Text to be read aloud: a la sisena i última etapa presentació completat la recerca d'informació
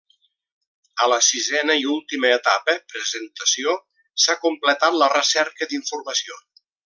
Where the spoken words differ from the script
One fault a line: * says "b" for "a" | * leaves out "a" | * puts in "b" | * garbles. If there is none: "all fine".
* puts in "s'ha"